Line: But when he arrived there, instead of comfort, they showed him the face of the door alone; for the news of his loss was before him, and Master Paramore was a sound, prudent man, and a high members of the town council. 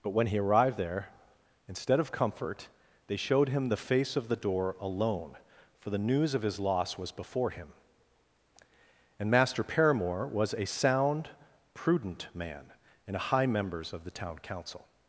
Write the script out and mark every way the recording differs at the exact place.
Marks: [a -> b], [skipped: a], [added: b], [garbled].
But when he arrived there, instead of comfort, they showed him the face of the door alone; for the news of his loss was before him, and Master Paramore was a sound, prudent man, and a high members of the town council.